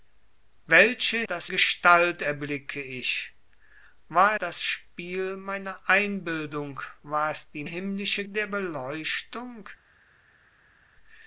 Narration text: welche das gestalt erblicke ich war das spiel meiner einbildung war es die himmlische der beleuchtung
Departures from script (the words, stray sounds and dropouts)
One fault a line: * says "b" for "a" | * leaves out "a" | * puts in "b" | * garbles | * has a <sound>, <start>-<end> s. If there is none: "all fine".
all fine